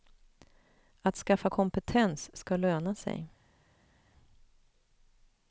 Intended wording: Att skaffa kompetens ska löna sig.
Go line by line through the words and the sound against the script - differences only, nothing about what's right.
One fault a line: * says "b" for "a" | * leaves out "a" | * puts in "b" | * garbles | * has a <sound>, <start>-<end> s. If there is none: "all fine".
all fine